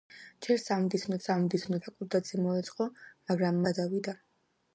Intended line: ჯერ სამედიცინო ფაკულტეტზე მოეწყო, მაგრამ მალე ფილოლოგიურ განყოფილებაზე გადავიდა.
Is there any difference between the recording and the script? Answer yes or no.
yes